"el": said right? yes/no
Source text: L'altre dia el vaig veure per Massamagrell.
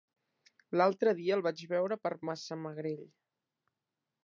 yes